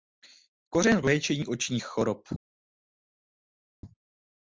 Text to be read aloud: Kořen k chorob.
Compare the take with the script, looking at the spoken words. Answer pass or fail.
fail